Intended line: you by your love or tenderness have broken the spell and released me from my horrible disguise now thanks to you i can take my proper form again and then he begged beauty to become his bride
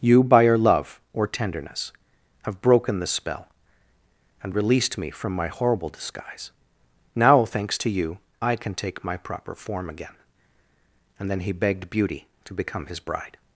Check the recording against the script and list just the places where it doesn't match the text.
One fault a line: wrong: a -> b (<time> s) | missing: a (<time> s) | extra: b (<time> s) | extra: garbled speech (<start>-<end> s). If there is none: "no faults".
no faults